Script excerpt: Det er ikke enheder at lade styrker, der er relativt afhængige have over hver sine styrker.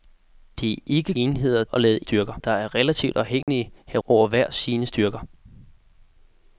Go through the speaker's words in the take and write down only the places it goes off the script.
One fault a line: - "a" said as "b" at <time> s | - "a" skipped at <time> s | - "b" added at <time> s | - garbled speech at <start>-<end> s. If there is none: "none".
none